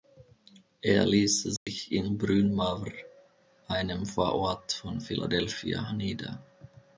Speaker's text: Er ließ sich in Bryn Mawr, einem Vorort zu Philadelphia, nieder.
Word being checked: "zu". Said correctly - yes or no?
no